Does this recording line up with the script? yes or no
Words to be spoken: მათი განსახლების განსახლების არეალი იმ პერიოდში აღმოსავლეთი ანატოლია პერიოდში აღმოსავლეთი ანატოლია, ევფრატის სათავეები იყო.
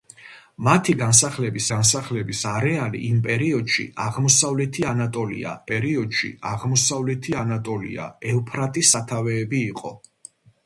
yes